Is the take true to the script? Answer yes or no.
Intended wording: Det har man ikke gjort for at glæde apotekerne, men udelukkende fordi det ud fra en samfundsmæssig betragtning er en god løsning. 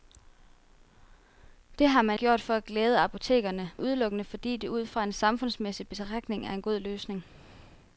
no